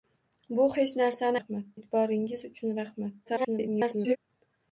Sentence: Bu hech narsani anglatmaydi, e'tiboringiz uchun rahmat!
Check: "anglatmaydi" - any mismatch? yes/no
yes